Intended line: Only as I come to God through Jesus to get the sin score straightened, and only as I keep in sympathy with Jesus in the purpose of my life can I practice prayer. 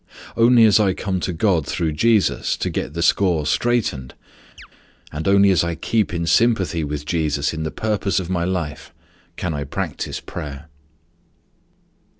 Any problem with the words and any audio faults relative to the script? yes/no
yes